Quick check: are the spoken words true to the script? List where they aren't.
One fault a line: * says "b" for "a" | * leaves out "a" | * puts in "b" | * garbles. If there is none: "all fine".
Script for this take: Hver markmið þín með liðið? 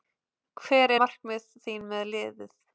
all fine